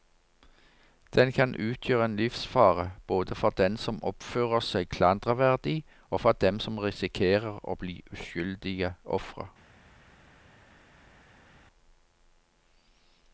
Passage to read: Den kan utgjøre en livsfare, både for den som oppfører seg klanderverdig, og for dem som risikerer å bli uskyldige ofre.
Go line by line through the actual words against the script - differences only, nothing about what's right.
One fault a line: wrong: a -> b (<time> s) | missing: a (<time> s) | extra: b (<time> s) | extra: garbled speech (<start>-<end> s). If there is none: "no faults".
no faults